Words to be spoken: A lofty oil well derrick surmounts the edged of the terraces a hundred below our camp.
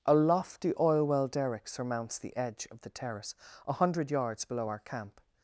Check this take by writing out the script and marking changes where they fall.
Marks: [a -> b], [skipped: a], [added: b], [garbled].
A lofty oil well derrick surmounts the [edged -> edge] of the [terraces -> terrace] a hundred [added: yards] below our camp.